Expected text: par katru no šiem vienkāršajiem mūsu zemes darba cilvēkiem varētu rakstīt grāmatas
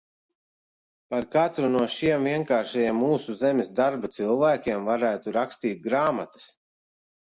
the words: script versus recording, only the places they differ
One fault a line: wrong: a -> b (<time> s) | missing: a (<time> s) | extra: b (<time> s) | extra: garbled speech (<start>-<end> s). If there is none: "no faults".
no faults